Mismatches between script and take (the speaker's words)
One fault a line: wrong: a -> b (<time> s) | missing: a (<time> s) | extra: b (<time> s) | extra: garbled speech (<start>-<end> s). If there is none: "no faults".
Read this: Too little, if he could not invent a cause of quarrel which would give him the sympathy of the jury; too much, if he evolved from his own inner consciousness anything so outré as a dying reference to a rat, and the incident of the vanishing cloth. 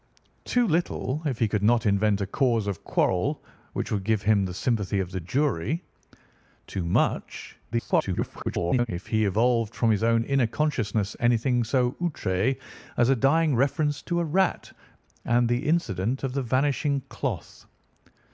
extra: garbled speech (7.7-8.9 s)